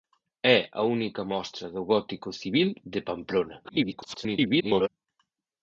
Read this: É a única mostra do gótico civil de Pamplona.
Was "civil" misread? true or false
false